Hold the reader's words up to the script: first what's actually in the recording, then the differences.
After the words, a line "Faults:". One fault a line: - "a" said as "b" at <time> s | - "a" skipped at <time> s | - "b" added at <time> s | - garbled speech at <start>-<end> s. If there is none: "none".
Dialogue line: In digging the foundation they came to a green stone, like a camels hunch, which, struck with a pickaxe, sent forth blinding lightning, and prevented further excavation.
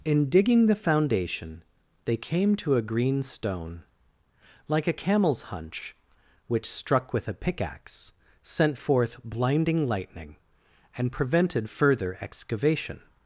In digging the foundation they came to a green stone, like a camels hunch, which, struck with a pickaxe, sent forth blinding lightning, and prevented further excavation.
Faults:
none